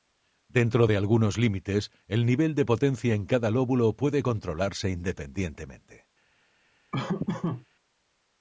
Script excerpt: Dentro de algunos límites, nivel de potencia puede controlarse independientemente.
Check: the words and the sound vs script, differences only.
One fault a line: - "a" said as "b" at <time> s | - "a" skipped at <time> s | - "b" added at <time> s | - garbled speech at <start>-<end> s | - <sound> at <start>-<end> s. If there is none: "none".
- "el" added at 2.1 s
- "en cada lóbulo" added at 3.1 s
- laugh at 6.9-7.7 s